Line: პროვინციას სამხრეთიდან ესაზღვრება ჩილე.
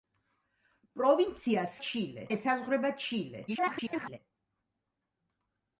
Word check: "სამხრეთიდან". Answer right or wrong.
wrong